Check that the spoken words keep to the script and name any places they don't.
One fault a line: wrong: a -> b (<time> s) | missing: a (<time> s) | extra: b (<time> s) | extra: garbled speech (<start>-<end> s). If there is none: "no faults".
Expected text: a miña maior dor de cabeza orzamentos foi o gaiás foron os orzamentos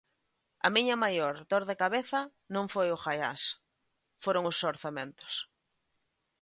wrong: orzamentos -> non (2.6 s)